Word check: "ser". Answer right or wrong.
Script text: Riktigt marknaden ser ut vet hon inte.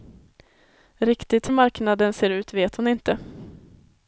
right